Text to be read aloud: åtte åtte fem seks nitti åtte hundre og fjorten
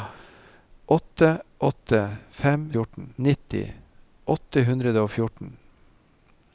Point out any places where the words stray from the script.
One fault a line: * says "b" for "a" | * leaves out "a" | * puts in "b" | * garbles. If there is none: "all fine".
* says "fjorten" for "seks"